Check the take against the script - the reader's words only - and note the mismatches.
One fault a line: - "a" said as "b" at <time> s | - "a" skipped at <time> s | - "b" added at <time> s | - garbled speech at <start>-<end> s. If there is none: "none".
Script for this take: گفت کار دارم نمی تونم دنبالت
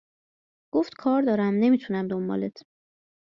none